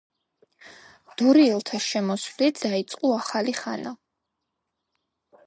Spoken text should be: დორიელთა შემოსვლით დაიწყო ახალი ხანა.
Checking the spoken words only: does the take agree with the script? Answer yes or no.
yes